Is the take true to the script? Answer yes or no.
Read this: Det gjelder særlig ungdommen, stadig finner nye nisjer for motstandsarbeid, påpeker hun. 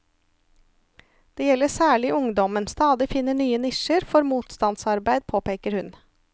yes